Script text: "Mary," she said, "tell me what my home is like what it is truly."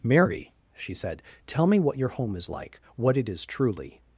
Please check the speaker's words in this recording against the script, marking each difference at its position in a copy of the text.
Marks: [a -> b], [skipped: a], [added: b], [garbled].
"Mary," she said, "tell me what [my -> your] home is like what it is truly."